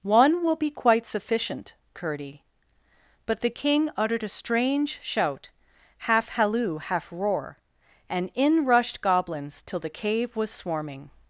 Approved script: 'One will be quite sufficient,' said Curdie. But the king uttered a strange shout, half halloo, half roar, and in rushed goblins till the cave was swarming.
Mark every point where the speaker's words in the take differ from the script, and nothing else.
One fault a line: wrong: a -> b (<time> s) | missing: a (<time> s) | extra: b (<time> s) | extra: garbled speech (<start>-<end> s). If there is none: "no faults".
missing: said (1.8 s)